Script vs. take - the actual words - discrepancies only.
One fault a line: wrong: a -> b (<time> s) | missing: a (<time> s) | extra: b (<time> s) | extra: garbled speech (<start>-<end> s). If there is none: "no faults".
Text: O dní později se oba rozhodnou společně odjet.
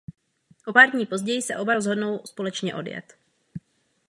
extra: pár (0.7 s)